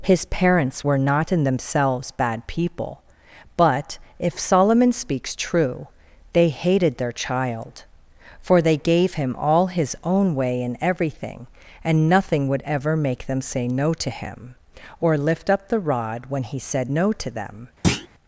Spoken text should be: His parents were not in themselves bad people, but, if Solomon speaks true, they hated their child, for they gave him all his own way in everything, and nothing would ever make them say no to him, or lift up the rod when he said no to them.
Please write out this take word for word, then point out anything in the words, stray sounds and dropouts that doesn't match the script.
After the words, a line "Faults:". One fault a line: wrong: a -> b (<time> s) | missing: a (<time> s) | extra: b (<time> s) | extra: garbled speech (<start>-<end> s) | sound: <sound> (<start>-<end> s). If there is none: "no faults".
His parents were not in themselves bad people, but, if Solomon speaks true, they hated their child, for they gave him all his own way in everything, and nothing would ever make them say no to him, or lift up the rod when he said no to them.
Faults:
sound: thud (17.8-18.1 s)